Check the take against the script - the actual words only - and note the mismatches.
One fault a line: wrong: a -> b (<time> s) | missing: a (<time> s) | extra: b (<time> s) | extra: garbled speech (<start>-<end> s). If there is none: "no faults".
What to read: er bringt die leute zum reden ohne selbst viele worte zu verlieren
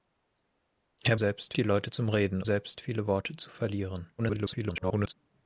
wrong: bringt -> selbst (1.1 s)
missing: ohne (2.4 s)
extra: garbled speech (4.2-5.1 s)